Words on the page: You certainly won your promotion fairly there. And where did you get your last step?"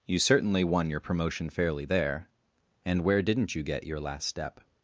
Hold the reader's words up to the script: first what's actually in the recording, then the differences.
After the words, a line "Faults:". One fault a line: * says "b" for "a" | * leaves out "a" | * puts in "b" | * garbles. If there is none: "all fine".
You certainly won your promotion fairly there. And where didn't you get your last step?"
Faults:
* says "didn't" for "did"